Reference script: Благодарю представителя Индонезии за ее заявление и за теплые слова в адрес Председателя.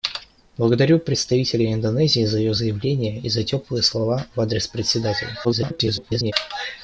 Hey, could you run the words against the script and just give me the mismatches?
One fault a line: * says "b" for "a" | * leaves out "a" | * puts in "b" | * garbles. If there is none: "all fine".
* garbles